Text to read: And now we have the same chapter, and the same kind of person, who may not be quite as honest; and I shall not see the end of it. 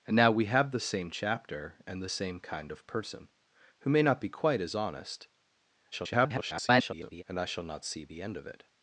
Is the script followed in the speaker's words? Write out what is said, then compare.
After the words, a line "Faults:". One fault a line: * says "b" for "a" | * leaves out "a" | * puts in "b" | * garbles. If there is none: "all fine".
And now we have the same chapter, and the same kind of person, who may not be quite as honest; [garbled] and I shall not see the end of it.
Faults:
* garbles